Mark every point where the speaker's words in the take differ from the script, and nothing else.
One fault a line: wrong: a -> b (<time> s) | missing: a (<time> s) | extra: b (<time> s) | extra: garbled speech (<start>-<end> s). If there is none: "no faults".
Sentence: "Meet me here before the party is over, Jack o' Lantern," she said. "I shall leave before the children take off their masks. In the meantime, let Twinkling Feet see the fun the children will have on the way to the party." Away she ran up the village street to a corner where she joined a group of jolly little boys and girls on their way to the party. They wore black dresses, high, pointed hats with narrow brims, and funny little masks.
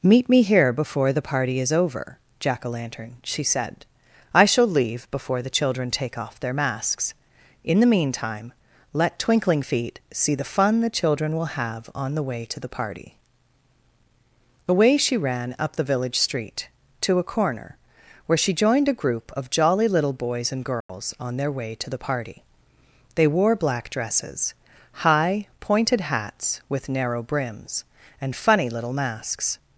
no faults